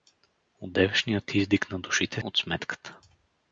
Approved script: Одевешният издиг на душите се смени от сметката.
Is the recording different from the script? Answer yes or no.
yes